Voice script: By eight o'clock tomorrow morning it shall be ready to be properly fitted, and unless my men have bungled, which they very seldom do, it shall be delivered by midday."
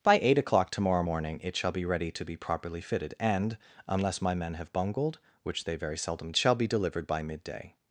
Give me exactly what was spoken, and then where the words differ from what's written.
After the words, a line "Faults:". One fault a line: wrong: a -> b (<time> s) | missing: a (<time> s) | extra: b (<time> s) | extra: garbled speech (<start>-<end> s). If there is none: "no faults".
By eight o'clock tomorrow morning it shall be ready to be properly fitted, and unless my men have bungled, which they very seldom shall be delivered by midday."
Faults:
missing: do it (6.3 s)